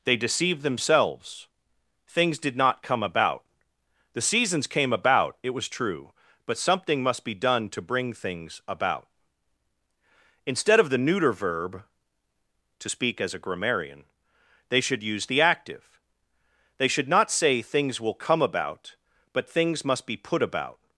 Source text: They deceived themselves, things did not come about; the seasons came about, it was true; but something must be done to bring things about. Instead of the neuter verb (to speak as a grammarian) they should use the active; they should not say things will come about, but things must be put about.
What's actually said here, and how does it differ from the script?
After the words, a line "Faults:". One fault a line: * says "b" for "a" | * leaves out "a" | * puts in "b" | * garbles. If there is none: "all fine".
They deceived themselves, things did not come about; the seasons came about, it was true; but something must be done to bring things about. Instead of the neuter verb (to speak as a grammarian) they should use the active; they should not say things will come about, but things must be put about.
Faults:
all fine